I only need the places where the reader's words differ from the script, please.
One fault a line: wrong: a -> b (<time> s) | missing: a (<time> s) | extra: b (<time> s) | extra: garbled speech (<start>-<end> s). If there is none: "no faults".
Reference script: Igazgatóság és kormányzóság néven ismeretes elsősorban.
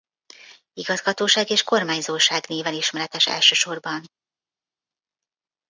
no faults